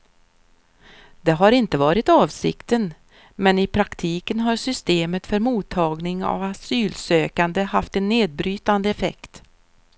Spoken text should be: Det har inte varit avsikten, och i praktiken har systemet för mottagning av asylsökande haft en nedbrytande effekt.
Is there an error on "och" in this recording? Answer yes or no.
yes